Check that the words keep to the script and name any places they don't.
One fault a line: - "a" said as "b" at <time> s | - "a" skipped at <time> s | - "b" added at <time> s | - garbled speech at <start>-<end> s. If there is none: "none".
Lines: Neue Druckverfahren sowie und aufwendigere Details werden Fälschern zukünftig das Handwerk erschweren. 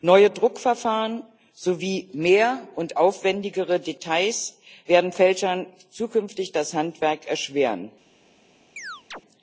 - "mehr" added at 2.1 s